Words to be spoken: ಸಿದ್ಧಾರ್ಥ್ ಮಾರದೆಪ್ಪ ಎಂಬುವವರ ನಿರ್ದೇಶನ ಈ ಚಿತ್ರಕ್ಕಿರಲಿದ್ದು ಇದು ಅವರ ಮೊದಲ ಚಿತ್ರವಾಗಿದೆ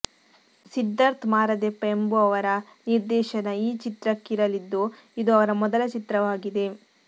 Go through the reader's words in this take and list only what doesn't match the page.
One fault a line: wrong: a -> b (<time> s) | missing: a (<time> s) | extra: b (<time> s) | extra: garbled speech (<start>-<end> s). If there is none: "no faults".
no faults